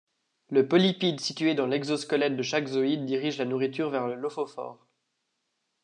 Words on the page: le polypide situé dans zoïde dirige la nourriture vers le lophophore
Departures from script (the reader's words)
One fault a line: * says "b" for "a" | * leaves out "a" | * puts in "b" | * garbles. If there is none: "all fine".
* puts in "l'exosquelette de chaque"